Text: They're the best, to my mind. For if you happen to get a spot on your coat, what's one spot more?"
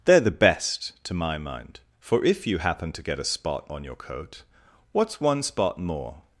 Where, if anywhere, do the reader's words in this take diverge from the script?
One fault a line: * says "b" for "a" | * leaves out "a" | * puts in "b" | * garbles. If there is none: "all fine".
all fine